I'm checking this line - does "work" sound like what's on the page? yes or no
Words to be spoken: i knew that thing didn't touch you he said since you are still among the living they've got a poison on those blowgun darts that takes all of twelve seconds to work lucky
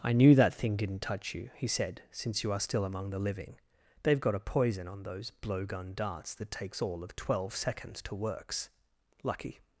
no